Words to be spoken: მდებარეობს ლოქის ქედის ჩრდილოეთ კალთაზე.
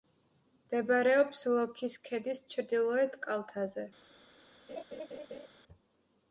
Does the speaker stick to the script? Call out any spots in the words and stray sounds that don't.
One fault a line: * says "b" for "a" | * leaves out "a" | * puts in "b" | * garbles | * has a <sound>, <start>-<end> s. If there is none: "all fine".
* has a laugh, 4.7-5.5 s